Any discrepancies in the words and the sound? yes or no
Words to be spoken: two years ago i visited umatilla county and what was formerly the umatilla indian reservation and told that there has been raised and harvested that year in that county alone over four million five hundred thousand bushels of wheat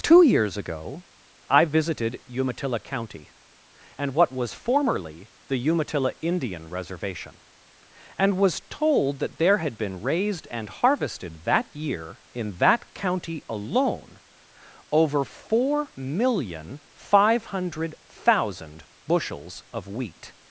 yes